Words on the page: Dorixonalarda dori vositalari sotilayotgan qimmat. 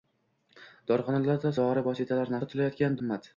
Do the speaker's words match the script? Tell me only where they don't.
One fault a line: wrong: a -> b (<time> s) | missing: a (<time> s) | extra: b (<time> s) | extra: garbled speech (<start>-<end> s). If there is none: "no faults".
no faults